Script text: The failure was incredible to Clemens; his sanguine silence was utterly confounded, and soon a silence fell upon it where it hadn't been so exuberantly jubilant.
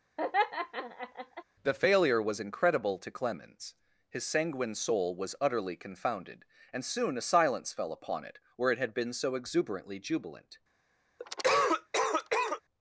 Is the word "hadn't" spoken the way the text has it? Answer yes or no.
no